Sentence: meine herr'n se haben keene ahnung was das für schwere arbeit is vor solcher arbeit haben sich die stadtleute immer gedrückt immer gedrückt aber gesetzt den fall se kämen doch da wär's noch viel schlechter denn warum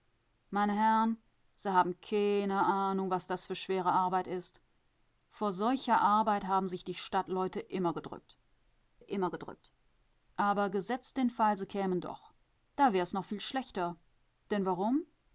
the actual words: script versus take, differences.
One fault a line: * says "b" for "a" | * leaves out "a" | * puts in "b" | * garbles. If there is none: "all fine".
all fine